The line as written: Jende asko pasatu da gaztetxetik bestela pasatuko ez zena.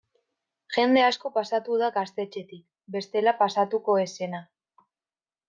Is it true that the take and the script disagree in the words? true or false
false